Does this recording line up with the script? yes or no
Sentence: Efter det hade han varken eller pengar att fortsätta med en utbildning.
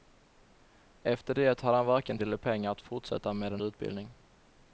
yes